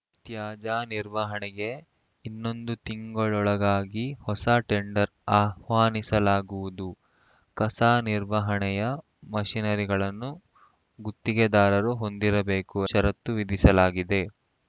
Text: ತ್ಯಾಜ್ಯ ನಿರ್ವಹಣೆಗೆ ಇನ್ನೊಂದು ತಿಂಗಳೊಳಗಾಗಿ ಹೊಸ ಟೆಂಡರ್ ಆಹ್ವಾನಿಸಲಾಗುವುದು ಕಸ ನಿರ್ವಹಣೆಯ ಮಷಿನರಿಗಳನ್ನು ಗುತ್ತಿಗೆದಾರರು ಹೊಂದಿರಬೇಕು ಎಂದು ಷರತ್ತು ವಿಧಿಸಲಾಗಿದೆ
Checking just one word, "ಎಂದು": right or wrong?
wrong